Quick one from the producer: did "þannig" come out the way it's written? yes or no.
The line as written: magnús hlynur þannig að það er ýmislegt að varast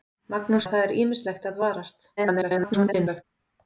no